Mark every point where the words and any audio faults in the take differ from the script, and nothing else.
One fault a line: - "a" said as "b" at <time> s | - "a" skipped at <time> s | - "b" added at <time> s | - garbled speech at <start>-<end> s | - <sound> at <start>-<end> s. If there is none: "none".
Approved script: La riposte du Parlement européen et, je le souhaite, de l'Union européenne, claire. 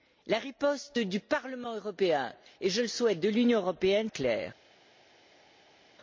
none